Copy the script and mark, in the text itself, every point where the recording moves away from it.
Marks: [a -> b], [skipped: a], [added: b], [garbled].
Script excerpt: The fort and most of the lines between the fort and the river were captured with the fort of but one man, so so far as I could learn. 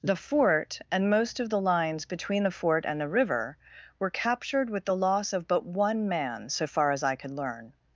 The fort and most of the lines between the fort and the river were captured with the [fort -> loss] of but one man, so [skipped: so] far as I could learn.